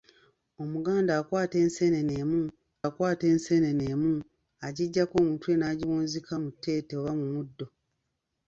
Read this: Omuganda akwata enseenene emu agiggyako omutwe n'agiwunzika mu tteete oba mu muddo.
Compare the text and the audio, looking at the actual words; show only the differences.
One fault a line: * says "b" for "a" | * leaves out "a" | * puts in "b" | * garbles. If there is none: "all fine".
* puts in "akwata enseenene emu"